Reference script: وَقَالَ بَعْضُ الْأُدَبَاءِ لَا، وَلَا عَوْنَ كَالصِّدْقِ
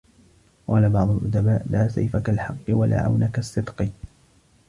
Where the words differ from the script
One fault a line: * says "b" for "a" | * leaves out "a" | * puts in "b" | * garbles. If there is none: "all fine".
* puts in "سَيْفَ كَالْحَقِّ"